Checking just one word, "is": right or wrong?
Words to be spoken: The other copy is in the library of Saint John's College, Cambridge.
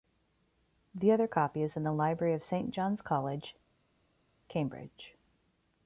right